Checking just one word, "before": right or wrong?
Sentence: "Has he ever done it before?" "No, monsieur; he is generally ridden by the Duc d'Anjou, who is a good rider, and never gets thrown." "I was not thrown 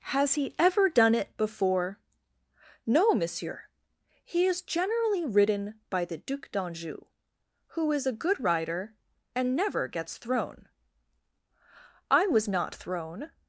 right